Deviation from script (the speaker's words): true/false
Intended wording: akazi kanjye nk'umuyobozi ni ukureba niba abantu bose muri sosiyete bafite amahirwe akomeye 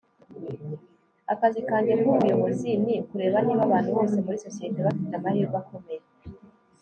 false